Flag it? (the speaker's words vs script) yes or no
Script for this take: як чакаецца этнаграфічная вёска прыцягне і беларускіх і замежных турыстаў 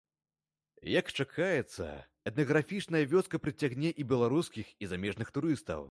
no